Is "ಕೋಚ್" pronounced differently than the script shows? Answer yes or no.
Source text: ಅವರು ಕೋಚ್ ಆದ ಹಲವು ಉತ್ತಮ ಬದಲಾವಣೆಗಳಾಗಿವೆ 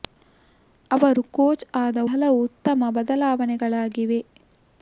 no